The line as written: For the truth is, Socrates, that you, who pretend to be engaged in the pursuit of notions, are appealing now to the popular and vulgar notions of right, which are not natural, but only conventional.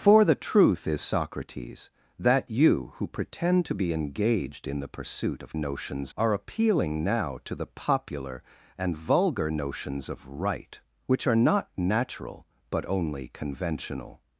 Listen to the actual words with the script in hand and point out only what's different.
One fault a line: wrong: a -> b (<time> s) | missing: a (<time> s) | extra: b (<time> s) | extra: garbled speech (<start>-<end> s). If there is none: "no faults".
no faults